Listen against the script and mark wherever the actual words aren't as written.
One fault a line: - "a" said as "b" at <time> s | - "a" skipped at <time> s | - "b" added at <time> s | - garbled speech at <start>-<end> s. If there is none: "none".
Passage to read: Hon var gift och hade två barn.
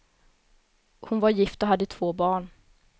none